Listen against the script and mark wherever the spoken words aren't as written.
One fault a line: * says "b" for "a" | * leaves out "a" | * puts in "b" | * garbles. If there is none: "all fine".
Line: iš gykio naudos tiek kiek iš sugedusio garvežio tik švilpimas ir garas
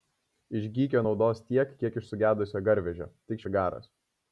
* leaves out "švilpimas"